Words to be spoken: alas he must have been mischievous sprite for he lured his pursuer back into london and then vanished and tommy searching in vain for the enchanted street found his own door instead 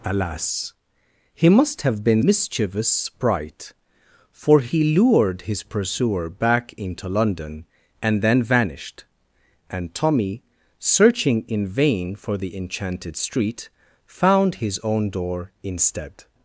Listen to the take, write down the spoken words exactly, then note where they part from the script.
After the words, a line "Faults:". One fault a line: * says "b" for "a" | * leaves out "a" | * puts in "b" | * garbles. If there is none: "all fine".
alas he must have been mischievous sprite for he lured his pursuer back into london and then vanished and tommy searching in vain for the enchanted street found his own door instead
Faults:
all fine